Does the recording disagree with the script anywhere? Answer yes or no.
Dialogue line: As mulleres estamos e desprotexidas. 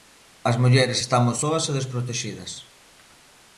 yes